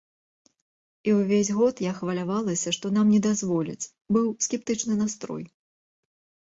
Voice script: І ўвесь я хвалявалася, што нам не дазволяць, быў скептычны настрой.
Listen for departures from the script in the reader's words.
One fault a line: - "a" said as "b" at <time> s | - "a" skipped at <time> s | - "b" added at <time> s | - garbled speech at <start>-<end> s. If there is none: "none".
- "год" added at 1.6 s